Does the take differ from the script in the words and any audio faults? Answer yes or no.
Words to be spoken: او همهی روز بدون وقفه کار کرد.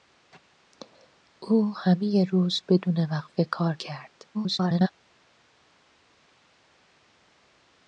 yes